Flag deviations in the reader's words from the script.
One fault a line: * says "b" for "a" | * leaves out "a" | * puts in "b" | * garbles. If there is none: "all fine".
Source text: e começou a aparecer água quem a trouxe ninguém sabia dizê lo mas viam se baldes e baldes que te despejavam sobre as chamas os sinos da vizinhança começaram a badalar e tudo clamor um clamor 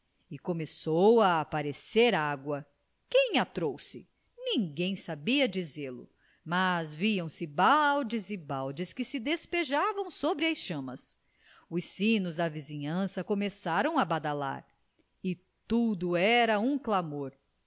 * says "se" for "te"
* says "era" for "clamor"